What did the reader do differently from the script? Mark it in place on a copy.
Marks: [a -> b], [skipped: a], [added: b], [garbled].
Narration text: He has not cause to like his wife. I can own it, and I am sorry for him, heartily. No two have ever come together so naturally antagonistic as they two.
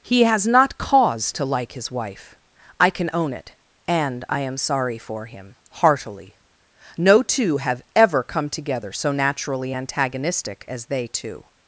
He has not cause to like his wife. I can own it, and I am sorry for him, heartily. No two have ever come together so naturally antagonistic as they two.